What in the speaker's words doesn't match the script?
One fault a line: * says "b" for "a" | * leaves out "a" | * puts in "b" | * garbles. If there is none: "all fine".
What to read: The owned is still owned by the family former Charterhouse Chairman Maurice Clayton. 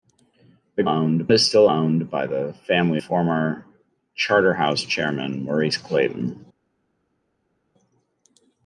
all fine